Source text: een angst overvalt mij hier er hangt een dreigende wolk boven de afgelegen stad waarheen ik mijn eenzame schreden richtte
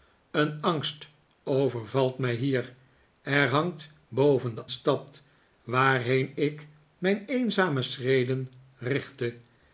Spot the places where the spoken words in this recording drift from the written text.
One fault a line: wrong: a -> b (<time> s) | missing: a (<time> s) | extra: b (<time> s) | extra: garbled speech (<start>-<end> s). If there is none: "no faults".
missing: een dreigende wolk (3.9 s)
missing: afgelegen (4.7 s)